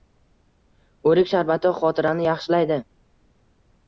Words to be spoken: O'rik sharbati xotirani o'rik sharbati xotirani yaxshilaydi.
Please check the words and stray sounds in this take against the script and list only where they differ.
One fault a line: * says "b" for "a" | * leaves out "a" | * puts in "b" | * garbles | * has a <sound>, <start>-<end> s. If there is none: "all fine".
* leaves out "o'rik sharbati xotirani"